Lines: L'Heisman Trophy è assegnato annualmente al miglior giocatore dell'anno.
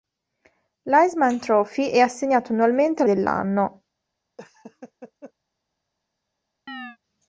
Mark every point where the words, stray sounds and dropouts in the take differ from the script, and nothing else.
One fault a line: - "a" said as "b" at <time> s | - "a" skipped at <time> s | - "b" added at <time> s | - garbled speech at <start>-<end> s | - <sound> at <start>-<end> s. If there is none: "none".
- "miglior giocatore" skipped at 3.1 s
- laugh at 4.4-5.3 s
- chirp at 6.7-7.0 s